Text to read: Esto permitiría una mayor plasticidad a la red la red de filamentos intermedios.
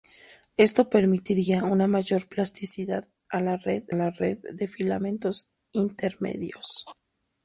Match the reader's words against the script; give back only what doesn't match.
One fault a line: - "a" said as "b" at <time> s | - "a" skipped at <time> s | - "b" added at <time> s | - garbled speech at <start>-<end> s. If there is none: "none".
none